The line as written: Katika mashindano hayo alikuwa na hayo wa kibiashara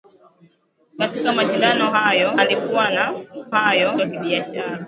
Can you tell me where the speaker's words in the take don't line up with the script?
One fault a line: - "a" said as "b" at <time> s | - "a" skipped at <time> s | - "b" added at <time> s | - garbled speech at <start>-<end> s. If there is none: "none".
none